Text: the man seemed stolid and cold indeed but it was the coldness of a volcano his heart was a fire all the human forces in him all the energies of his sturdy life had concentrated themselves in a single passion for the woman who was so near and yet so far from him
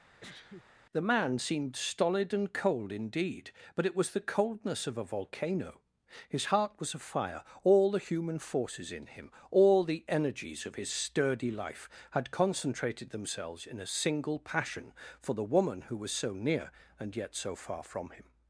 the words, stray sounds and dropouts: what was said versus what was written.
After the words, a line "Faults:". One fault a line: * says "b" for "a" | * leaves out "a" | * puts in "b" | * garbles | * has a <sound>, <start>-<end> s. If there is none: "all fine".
the man seemed stolid and cold indeed but it was the coldness of a volcano his heart was a fire all the human forces in him all the energies of his sturdy life had concentrated themselves in a single passion for the woman who was so near and yet so far from him
Faults:
* has a sneeze, 0.2-0.8 s